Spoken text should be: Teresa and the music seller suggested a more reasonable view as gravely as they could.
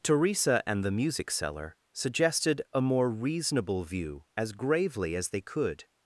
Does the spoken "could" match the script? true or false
true